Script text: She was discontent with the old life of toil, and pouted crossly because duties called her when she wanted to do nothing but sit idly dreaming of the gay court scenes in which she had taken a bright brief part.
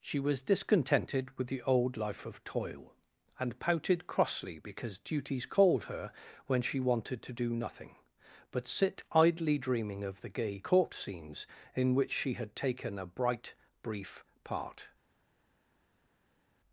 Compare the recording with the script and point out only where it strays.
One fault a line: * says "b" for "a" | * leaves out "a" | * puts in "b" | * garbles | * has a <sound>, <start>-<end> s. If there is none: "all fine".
* says "discontented" for "discontent"